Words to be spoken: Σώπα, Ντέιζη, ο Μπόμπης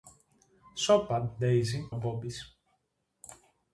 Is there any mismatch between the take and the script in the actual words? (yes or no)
no